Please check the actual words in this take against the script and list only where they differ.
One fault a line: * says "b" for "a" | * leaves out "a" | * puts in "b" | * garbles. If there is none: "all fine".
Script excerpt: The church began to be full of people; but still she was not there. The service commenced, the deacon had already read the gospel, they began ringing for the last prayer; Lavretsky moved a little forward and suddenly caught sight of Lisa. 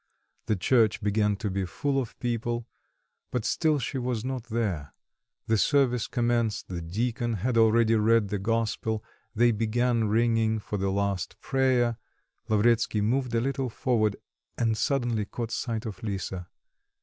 all fine